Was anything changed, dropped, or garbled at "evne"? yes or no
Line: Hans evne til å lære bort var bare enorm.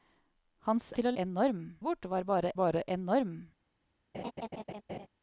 yes